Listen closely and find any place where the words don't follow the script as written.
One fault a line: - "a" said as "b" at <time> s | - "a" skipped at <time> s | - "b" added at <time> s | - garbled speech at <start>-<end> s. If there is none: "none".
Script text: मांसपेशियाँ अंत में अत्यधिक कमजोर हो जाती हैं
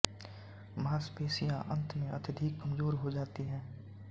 none